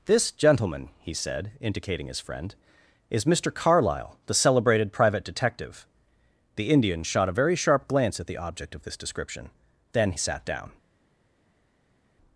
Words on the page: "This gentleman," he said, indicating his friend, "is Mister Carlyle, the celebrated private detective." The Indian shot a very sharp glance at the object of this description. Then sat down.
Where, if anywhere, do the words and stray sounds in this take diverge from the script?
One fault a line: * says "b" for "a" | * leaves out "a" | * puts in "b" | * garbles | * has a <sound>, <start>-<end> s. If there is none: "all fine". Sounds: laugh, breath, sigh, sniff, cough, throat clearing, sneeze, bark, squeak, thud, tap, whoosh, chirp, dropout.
all fine